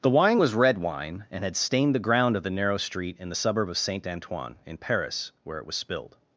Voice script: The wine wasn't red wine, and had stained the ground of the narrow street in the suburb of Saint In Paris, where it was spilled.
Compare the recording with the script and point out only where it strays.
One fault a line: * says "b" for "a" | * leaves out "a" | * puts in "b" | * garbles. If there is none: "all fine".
* says "was" for "wasn't"
* puts in "Antoine"